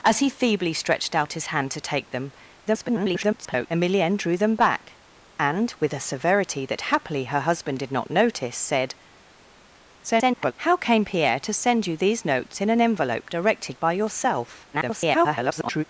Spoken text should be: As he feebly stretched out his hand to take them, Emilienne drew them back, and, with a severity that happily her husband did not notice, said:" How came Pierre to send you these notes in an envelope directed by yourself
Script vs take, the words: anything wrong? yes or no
yes